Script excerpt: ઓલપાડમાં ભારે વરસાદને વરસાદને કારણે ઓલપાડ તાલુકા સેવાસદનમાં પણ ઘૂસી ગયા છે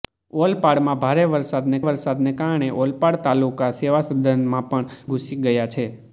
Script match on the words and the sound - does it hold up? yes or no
yes